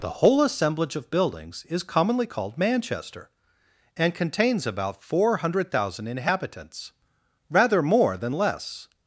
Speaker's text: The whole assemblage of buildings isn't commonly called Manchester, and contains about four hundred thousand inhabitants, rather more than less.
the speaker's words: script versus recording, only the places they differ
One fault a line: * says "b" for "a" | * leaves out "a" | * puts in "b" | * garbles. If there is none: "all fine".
* says "is" for "isn't"